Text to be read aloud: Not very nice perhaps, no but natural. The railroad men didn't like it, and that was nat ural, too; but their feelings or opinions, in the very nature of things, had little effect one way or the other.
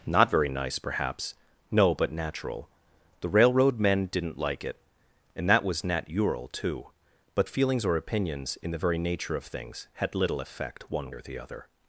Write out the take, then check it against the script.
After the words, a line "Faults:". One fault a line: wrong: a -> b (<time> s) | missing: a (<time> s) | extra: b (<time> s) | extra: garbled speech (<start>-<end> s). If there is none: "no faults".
Not very nice perhaps, no but natural. The railroad men didn't like it, and that was nat ural, too; but feelings or opinions, in the very nature of things, had little effect one or the other.
Faults:
missing: their (7.5 s)
missing: way (11.1 s)